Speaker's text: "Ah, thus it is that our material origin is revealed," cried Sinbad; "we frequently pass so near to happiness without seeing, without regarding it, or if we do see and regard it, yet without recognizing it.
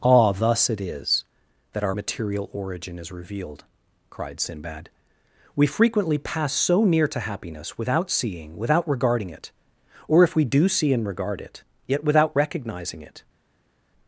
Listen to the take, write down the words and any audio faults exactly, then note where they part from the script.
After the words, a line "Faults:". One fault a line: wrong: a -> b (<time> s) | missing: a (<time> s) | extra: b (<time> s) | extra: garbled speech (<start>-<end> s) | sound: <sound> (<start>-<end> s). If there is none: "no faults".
"Ah, thus it is that our material origin is revealed," cried Sinbad; "we frequently pass so near to happiness without seeing, without regarding it, or if we do see and regard it, yet without recognizing it.
Faults:
no faults